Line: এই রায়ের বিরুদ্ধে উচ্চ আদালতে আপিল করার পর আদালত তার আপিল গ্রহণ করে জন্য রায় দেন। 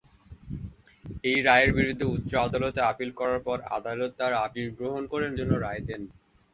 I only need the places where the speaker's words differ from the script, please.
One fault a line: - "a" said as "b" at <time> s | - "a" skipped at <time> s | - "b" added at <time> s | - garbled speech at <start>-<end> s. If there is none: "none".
none